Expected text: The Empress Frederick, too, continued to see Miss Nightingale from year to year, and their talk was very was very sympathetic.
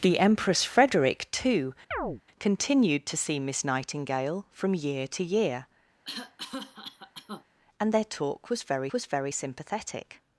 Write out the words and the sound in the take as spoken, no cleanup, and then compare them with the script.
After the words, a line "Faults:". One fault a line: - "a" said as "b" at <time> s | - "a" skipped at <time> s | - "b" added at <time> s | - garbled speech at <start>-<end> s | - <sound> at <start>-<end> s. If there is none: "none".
The Empress Frederick, too, continued to see Miss Nightingale from year to year, and their talk was very was very sympathetic.
Faults:
- chirp at 1.9-2.2 s
- cough at 6.0-7.4 s